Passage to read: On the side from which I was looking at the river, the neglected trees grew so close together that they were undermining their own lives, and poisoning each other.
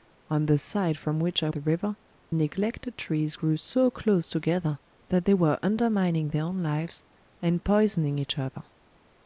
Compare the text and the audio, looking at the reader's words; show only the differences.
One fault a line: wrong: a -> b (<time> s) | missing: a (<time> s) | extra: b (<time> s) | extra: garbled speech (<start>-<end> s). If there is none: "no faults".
missing: was looking at (1.5 s)
missing: the (2.0 s)